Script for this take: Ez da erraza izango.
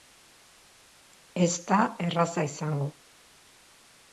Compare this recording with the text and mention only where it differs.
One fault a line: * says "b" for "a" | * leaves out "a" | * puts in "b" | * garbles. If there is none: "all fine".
all fine